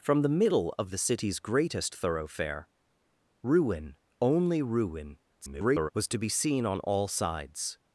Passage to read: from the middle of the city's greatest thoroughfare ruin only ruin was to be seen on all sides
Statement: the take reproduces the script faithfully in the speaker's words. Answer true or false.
false